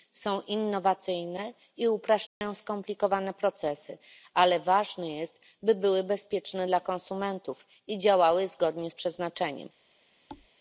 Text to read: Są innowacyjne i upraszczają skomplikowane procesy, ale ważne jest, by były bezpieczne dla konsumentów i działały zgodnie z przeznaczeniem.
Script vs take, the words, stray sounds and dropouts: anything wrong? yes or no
yes